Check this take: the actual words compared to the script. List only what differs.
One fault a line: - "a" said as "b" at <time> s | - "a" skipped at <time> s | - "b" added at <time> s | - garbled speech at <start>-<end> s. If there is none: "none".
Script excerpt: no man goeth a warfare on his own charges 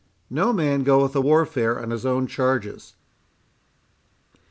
none